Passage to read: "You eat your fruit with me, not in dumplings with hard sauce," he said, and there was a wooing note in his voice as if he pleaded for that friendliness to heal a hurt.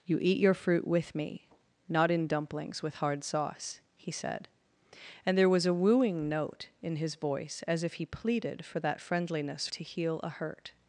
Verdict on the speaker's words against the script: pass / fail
pass